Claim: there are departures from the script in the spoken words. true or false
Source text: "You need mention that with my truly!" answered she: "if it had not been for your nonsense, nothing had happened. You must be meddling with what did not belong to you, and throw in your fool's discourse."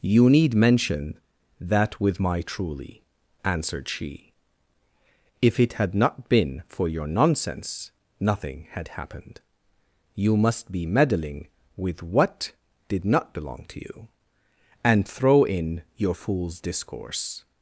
false